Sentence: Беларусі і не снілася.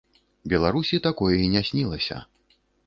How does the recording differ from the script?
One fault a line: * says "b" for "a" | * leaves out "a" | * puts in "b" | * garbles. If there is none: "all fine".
* puts in "такое"